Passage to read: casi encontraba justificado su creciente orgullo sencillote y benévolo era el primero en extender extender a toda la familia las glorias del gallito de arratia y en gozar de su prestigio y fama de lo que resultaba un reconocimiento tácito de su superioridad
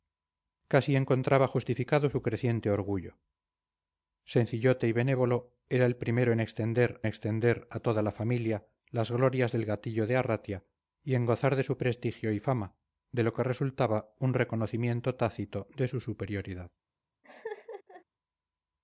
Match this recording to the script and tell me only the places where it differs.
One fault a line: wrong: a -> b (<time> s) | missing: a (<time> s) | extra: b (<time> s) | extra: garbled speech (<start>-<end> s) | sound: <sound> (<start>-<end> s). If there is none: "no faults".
sound: laugh (17.2-18.0 s)